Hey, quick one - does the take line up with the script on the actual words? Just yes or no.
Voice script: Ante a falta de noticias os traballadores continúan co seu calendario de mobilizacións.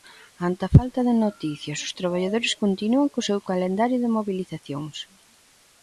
yes